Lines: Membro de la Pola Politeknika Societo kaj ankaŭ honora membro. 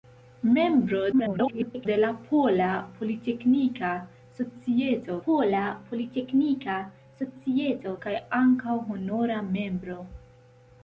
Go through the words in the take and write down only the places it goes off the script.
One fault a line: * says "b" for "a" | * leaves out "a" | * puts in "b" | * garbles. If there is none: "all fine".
* garbles
* puts in "Pola Politeknika Societo"